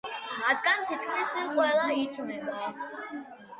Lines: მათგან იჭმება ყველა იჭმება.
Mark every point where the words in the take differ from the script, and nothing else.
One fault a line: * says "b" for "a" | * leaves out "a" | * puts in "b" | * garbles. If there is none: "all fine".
* says "თითქმის" for "იჭმება"